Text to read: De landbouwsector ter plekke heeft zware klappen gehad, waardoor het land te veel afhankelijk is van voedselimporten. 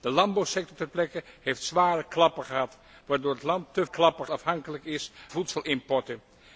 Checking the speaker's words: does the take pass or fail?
fail